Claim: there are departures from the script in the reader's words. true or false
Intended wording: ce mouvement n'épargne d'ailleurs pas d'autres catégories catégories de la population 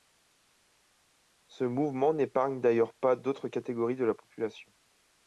true